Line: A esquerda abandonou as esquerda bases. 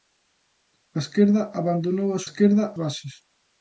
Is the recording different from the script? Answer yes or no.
no